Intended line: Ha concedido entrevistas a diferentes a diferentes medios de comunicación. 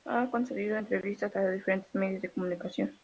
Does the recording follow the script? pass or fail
fail